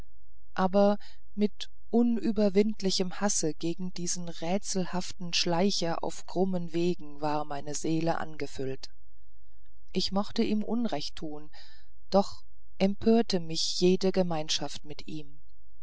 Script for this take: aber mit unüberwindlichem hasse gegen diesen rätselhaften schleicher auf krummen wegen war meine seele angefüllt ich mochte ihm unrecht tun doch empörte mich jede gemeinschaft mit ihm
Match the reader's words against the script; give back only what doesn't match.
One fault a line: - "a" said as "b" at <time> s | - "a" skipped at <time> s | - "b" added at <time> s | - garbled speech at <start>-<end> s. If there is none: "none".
none